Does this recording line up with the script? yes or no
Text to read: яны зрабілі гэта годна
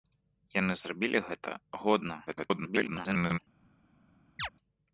no